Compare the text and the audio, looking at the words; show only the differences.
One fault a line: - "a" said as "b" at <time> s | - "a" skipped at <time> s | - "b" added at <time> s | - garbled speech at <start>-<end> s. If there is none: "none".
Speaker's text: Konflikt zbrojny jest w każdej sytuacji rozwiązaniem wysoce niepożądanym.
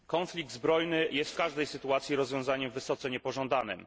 none